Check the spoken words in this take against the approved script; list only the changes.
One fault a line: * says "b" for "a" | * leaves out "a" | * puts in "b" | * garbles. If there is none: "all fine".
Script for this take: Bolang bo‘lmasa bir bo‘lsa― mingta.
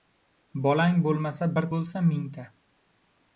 all fine